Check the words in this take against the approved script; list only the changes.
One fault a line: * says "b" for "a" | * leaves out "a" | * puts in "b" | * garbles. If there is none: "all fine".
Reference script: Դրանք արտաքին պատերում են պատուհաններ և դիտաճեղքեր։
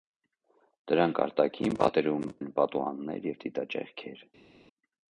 all fine